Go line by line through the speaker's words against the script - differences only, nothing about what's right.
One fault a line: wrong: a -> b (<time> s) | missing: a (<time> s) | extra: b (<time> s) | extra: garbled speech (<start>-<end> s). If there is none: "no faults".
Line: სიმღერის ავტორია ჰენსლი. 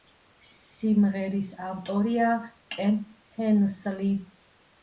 extra: კენ (2.8 s)